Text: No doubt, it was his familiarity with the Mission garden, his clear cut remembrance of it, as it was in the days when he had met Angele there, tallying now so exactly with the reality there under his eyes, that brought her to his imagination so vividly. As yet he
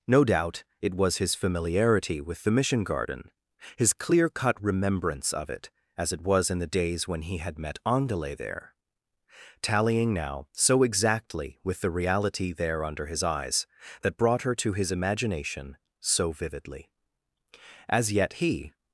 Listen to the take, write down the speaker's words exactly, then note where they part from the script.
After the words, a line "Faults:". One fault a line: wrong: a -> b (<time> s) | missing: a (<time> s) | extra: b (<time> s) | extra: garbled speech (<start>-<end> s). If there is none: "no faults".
No doubt, it was his familiarity with the Mission garden, his clear cut remembrance of it, as it was in the days when he had met Angele there, tallying now so exactly with the reality there under his eyes, that brought her to his imagination so vividly. As yet he
Faults:
no faults